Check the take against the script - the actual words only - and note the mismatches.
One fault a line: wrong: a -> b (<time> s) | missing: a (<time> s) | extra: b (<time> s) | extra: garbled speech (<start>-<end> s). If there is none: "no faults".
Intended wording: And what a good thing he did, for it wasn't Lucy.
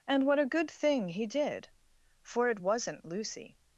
no faults